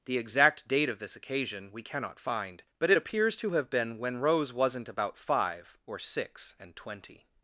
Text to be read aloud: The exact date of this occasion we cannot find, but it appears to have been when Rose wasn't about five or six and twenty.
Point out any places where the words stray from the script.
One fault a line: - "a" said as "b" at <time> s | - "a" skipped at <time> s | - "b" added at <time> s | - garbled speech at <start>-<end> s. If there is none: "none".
none